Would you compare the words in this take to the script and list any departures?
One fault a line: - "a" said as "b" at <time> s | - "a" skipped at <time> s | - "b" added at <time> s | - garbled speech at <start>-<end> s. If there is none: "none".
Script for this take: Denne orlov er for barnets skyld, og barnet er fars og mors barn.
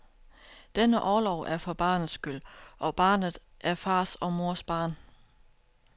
none